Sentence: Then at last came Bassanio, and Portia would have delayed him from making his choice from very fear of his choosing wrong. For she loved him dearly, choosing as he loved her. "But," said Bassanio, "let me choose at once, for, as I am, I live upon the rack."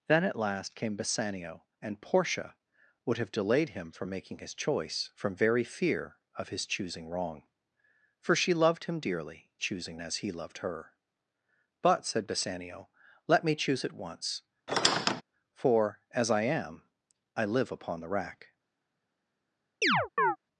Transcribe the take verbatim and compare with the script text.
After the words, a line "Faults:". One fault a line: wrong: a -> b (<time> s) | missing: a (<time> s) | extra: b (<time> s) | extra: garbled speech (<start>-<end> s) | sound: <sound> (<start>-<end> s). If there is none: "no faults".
Then at last came Bassanio, and Portia would have delayed him from making his choice from very fear of his choosing wrong. For she loved him dearly, choosing as he loved her. "But," said Bassanio, "let me choose at once, for, as I am, I live upon the rack."
Faults:
sound: squeak (14.7-15.2 s)
sound: chirp (19.8-20.4 s)